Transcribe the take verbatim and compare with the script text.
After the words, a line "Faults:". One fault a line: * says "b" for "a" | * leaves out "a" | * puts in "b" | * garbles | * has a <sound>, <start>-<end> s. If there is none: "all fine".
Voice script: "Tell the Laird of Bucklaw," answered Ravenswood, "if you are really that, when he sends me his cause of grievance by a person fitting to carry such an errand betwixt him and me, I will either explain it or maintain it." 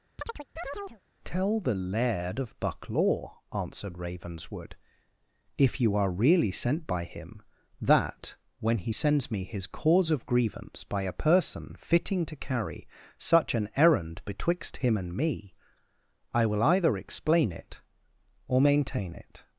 "Tell the Laird of Bucklaw," answered Ravenswood, "if you are really sent by him, that, when he sends me his cause of grievance by a person fitting to carry such an errand betwixt him and me, I will either explain it or maintain it."
Faults:
* has a chirp, 0.2-1.0 s
* puts in "sent by him"